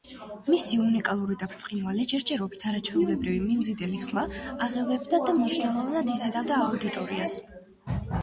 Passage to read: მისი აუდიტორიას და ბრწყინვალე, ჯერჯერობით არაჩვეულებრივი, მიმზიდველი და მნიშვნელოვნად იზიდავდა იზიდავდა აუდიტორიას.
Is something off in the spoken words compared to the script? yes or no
yes